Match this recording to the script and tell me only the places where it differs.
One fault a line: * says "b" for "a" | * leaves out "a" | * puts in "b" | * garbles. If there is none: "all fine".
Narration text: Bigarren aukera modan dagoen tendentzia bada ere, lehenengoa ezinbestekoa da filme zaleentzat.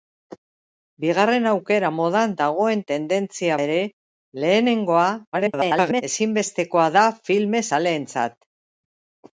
* leaves out "bada"
* garbles